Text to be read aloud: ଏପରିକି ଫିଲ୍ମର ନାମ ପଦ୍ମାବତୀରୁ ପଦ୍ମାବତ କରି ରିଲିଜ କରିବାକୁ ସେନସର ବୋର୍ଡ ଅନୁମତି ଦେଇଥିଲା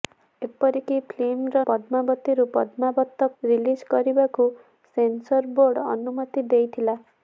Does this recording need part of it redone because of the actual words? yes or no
yes